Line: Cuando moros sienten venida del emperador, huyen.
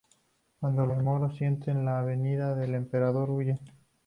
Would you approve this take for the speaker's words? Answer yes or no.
no